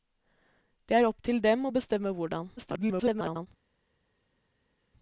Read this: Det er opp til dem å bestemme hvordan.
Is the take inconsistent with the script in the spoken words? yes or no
yes